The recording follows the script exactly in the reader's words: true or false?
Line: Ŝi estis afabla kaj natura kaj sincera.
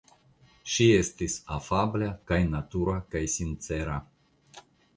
true